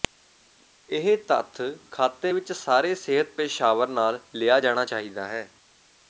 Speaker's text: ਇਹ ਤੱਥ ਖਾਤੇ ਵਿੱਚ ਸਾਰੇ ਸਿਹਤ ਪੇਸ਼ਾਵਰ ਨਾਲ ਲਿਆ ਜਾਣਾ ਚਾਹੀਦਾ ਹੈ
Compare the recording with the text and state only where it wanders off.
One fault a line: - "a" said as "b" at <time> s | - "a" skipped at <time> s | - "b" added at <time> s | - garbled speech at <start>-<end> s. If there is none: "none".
none